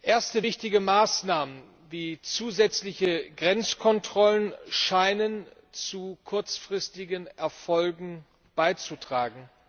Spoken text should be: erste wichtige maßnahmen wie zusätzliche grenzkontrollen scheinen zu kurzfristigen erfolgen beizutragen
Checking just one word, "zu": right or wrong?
right